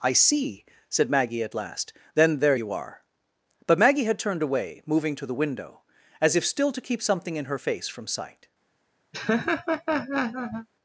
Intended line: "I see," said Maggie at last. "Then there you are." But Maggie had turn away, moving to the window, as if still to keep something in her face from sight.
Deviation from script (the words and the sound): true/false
true